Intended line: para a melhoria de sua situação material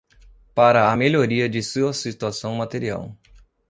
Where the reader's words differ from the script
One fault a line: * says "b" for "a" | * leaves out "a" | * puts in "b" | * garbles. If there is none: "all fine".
all fine